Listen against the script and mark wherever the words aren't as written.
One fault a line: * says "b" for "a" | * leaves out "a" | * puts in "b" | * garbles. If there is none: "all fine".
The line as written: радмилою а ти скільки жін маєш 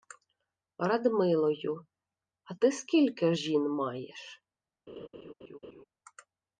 all fine